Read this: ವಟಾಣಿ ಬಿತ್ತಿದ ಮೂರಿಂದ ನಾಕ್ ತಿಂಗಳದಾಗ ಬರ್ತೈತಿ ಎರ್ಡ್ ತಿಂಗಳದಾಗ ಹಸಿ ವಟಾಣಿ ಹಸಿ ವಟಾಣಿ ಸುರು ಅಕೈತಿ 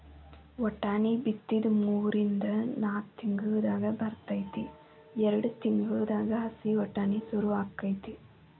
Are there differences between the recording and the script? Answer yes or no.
yes